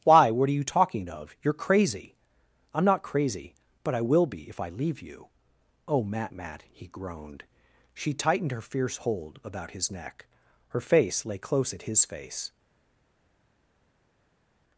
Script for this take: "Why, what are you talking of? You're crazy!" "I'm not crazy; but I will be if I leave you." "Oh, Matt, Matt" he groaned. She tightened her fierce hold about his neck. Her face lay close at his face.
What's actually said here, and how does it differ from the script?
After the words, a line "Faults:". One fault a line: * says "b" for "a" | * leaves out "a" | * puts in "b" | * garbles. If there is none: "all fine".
"Why, what are you talking of? You're crazy!" "I'm not crazy; but I will be if I leave you." "Oh, Matt, Matt" he groaned. She tightened her fierce hold about his neck. Her face lay close at his face.
Faults:
all fine